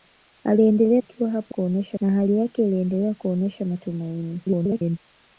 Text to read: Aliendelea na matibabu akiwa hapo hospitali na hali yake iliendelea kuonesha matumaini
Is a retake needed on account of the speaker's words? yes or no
yes